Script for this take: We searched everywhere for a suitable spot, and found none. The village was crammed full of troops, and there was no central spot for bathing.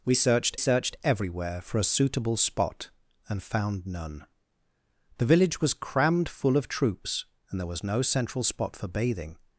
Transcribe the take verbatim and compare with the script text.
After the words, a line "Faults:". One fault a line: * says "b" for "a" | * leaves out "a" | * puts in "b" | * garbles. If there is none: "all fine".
We searched searched everywhere for a suitable spot, and found none. The village was crammed full of troops, and there was no central spot for bathing.
Faults:
* puts in "searched"